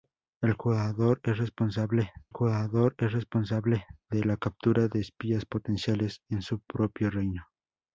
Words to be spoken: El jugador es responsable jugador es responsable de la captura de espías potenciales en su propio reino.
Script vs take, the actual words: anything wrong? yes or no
no